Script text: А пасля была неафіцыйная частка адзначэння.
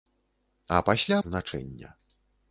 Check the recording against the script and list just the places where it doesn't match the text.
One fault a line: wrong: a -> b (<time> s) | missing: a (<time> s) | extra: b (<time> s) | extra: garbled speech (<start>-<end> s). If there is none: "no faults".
missing: была неафіцыйная частка (1.2 s)